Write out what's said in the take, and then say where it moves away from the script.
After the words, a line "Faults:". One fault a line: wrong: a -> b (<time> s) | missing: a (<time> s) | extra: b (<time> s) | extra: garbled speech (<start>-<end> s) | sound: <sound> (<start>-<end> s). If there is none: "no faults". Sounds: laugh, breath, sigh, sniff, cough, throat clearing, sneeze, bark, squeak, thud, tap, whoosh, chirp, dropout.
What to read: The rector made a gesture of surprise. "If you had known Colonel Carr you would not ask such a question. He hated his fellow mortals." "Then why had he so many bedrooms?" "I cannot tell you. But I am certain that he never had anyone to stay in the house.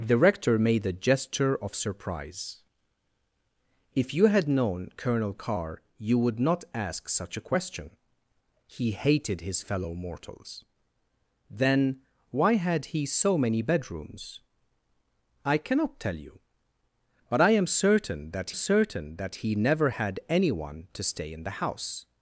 The rector made a gesture of surprise. "If you had known Colonel Carr you would not ask such a question. He hated his fellow mortals." "Then why had he so many bedrooms?" "I cannot tell you. But I am certain that certain that he never had anyone to stay in the house.
Faults:
extra: certain that (18.5 s)